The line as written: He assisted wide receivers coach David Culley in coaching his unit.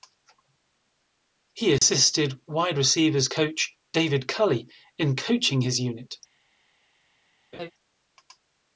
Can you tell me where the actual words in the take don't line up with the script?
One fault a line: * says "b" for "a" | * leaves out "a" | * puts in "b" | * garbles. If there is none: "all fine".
all fine